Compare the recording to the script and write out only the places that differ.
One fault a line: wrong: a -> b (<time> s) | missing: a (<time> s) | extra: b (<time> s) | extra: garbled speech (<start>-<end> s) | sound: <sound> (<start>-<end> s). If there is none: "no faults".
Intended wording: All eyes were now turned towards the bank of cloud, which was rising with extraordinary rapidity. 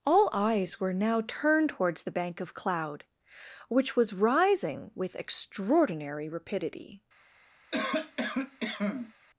sound: cough (7.7-9.1 s)